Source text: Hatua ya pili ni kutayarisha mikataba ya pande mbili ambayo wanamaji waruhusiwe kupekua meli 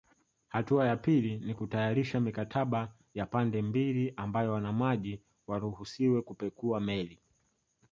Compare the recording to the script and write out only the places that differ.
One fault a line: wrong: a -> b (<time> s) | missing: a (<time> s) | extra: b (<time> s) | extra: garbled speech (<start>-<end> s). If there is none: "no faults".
no faults